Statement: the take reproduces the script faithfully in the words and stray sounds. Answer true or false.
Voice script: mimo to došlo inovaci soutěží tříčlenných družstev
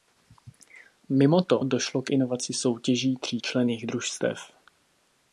false